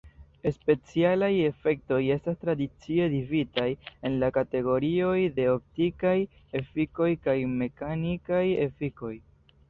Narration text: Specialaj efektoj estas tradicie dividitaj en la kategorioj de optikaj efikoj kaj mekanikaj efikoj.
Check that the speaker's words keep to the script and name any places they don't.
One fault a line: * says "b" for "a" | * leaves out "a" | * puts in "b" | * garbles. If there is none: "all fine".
all fine